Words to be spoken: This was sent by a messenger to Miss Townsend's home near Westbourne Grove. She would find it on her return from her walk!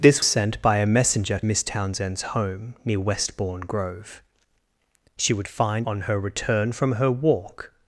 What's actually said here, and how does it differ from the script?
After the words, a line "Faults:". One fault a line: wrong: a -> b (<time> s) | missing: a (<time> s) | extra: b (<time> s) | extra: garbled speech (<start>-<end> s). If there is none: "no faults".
This sent by a messenger Miss Townsend's home near Westbourne Grove. She would find on her return from her walk!
Faults:
missing: was (0.2 s)
missing: to (1.4 s)
missing: it (5.9 s)